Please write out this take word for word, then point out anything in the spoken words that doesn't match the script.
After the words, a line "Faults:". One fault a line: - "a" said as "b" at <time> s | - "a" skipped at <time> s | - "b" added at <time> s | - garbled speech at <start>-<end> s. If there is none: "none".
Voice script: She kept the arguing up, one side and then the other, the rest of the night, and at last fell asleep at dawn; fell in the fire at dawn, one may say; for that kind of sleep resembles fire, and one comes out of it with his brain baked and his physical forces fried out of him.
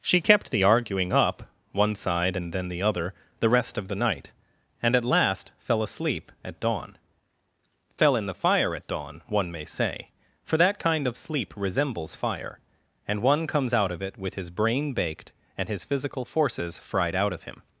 She kept the arguing up, one side and then the other, the rest of the night, and at last fell asleep at dawn; fell in the fire at dawn, one may say; for that kind of sleep resembles fire, and one comes out of it with his brain baked and his physical forces fried out of him.
Faults:
none